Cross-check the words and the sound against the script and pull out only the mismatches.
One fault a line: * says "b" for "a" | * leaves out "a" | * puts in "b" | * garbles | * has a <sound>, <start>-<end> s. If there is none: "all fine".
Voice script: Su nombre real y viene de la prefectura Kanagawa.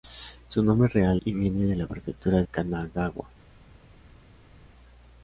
all fine